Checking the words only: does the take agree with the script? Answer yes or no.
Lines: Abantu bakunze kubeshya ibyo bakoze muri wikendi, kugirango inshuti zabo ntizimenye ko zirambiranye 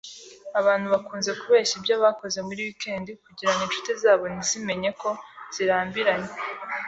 yes